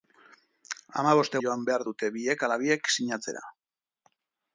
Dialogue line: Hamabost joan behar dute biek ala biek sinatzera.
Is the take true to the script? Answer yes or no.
yes